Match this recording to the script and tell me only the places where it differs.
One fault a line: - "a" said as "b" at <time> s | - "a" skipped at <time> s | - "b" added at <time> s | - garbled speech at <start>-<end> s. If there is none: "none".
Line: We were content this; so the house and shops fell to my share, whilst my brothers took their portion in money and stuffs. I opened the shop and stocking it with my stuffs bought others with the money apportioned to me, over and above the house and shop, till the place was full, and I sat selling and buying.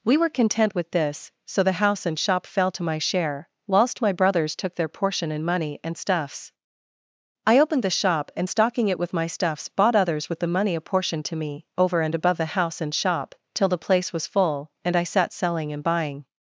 - "with" added at 0.7 s
- "shops" said as "shop" at 2.2 s